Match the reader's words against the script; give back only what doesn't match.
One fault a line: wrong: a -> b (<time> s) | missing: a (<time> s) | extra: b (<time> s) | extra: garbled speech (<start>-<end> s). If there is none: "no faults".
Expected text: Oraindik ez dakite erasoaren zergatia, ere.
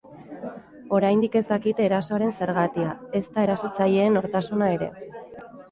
extra: ezta erasotzaileen nortasuna (3.2 s)